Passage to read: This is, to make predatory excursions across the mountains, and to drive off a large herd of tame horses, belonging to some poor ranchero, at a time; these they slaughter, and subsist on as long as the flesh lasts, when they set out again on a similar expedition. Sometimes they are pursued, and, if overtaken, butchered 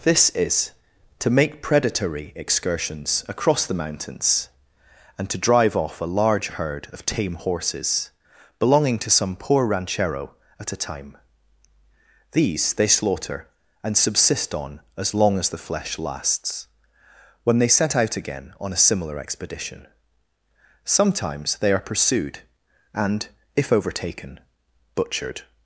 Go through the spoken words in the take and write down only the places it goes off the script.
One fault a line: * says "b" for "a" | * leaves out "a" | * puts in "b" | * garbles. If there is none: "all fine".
all fine